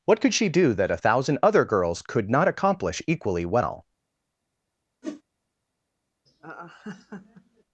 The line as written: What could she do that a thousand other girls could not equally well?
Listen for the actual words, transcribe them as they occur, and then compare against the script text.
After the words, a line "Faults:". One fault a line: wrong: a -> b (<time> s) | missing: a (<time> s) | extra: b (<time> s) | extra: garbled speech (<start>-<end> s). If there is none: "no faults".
What could she do that a thousand other girls could not accomplish equally well?
Faults:
extra: accomplish (2.5 s)